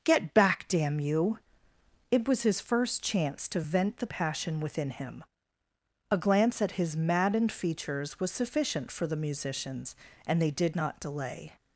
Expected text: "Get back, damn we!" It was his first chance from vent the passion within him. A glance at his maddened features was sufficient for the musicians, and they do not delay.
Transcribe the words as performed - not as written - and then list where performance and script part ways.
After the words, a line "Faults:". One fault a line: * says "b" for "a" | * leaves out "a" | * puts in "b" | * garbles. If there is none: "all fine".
"Get back, damn you!" It was his first chance to vent the passion within him. A glance at his maddened features was sufficient for the musicians, and they did not delay.
Faults:
* says "you" for "we"
* says "to" for "from"
* says "did" for "do"